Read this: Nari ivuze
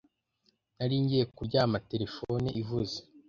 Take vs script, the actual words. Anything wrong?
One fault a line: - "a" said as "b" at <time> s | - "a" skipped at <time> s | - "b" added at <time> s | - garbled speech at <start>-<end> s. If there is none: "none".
- "ngiye kuryama telefone" added at 1.0 s